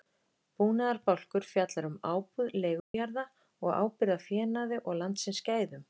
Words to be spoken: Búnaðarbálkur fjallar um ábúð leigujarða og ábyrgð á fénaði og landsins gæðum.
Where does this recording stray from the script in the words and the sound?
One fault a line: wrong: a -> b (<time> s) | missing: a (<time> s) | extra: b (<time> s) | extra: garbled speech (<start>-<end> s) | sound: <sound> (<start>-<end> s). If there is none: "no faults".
sound: dropout (2.8-2.9 s)